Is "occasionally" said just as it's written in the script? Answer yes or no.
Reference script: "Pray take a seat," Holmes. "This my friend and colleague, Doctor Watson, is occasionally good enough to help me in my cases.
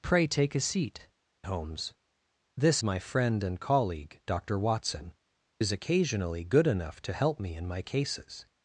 yes